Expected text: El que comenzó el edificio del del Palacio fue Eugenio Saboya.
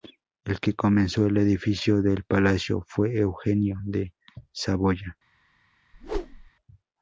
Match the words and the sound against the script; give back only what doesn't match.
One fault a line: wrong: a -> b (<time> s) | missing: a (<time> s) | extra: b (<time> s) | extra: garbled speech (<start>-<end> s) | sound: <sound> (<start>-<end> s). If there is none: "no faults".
missing: del (2.2 s)
extra: de (3.8 s)
sound: whoosh (5.9-6.5 s)